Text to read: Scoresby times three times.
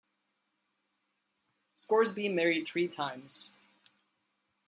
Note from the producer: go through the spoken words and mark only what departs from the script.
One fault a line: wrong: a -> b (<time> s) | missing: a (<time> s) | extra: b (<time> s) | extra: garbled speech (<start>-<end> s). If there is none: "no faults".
wrong: times -> married (2.3 s)